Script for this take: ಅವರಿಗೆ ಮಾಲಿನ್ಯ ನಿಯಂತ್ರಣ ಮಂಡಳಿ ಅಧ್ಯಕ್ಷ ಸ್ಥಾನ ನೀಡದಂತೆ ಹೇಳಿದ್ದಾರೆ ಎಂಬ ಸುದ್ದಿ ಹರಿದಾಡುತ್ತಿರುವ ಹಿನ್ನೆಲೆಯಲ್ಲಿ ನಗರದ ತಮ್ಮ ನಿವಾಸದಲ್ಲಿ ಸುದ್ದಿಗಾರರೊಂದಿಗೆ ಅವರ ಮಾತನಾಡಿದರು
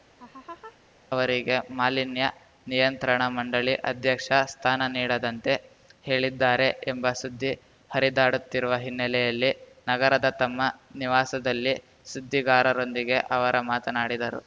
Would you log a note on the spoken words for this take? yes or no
no